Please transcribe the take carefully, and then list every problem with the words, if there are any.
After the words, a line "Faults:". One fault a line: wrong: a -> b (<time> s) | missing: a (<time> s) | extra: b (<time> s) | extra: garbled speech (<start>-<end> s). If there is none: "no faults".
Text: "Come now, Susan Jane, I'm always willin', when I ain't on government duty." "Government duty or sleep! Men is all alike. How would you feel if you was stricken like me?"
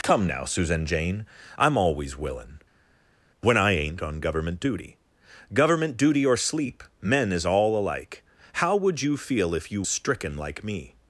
"Come now, Susan Jane, I'm always willin', when I ain't on government duty." "Government duty or sleep! Men is all alike. How would you feel if you stricken like me?"
Faults:
missing: was (9.8 s)